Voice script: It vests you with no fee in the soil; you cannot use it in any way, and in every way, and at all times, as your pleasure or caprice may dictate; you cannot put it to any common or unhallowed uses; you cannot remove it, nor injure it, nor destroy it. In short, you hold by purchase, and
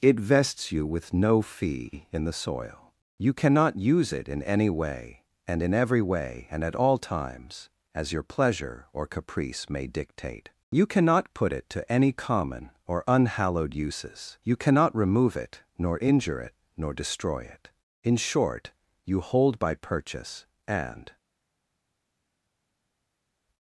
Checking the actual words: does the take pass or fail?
pass